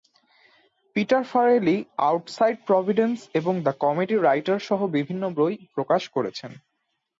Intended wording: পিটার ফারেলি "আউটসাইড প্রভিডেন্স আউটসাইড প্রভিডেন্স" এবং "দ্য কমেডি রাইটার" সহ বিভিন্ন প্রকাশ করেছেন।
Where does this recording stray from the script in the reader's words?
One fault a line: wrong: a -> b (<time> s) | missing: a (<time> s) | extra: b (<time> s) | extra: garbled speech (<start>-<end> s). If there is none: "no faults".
missing: আউটসাইড প্রভিডেন্স (3.2 s)
extra: বই (5.4 s)